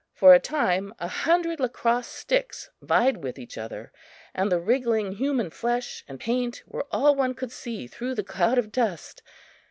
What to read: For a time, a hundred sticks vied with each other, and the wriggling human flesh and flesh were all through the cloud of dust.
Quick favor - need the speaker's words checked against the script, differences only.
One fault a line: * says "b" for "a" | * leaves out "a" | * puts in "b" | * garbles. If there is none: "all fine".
* puts in "lacrosse"
* says "paint" for "flesh"
* puts in "one could see"